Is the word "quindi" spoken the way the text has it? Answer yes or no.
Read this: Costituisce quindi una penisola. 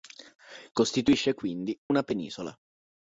yes